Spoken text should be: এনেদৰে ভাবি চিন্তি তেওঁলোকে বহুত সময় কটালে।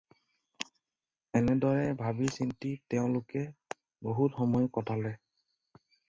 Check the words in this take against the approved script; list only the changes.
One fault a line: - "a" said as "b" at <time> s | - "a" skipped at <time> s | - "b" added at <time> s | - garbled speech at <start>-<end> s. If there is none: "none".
none